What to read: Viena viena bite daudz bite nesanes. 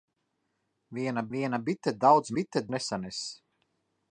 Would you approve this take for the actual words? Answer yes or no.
yes